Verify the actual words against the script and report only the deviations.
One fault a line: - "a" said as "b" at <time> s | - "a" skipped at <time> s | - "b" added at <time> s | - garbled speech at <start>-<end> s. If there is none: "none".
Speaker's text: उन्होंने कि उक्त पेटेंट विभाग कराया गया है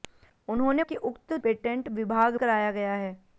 none